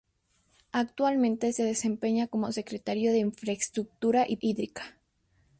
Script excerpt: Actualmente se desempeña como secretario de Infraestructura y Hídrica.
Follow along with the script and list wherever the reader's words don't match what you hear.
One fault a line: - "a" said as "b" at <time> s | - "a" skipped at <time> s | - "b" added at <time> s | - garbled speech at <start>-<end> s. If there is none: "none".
none